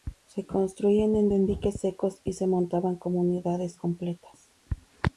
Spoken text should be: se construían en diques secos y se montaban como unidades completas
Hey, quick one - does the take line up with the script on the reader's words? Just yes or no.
no